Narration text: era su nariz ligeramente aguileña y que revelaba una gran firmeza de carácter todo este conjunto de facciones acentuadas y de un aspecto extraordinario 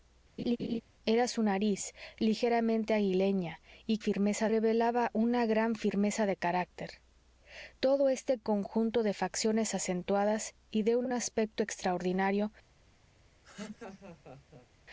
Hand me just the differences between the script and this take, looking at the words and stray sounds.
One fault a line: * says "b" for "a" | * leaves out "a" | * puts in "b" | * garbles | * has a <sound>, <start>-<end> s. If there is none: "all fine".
* has a laugh, 0.4-0.8 s
* says "firmeza" for "que"
* puts in "un"
* has a laugh, 13.4-14.7 s